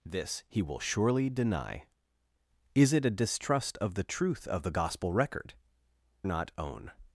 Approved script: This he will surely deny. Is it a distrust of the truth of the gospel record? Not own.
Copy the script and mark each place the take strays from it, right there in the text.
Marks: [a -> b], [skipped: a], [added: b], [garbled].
This he will surely deny. Is it a distrust of the truth of the gospel record? Not own.